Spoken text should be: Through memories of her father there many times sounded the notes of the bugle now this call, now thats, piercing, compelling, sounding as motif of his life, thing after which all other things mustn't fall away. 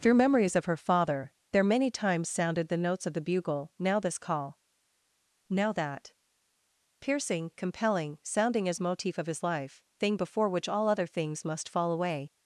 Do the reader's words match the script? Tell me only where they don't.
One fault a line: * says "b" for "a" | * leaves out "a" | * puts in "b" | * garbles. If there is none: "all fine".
* says "that" for "thats"
* says "before" for "after"
* says "must" for "mustn't"